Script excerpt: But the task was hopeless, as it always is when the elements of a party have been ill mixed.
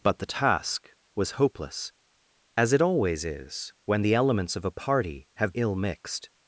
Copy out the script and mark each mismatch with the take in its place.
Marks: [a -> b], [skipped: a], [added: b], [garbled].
But the task was hopeless, as it always is when the elements of a party have [skipped: been] ill mixed.